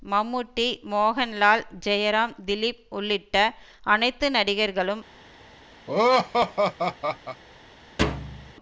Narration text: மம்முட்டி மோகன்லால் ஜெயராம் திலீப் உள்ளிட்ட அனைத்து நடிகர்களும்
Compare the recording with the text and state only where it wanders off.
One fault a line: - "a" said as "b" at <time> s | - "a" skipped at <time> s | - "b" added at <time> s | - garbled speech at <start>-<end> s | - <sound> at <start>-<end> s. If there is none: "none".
- laugh at 5.9-7.4 s
- thud at 8.0-8.5 s